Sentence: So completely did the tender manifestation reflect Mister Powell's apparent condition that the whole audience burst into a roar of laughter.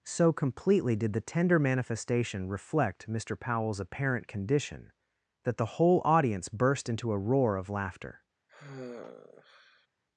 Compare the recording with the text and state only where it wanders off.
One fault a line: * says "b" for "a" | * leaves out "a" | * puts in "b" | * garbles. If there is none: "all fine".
all fine